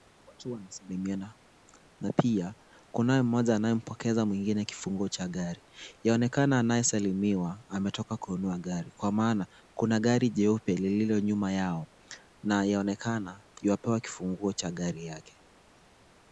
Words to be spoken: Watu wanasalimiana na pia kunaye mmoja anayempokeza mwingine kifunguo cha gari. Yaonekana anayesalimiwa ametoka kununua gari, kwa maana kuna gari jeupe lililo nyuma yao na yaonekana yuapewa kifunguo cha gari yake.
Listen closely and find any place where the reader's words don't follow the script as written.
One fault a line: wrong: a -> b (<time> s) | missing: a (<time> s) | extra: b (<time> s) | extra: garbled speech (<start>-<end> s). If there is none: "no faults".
no faults